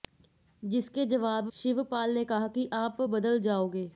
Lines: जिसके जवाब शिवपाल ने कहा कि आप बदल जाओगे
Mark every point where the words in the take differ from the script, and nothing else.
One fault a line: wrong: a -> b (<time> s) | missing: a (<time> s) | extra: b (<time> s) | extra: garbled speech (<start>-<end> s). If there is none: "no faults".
no faults